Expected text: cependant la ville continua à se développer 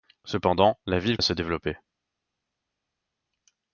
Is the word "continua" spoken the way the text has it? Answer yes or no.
no